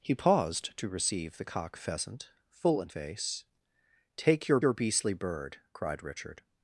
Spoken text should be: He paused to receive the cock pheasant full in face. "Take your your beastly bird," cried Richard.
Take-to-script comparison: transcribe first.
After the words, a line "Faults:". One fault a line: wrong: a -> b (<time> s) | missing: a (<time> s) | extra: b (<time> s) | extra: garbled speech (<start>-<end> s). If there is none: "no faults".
He paused to receive the cock pheasant full in face. "Take your your beastly bird," cried Richard.
Faults:
no faults